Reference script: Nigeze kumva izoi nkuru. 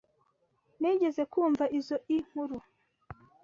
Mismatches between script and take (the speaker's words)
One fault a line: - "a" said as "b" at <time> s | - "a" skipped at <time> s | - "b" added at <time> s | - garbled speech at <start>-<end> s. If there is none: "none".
none